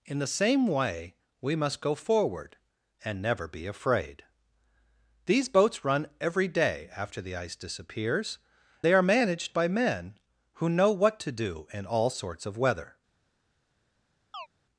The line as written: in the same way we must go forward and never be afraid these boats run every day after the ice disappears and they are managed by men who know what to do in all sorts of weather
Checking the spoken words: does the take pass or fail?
fail